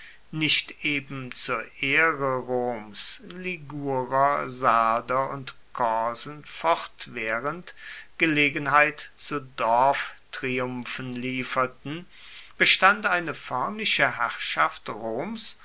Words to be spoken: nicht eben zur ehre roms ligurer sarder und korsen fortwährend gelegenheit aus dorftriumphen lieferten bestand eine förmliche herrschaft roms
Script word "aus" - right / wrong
wrong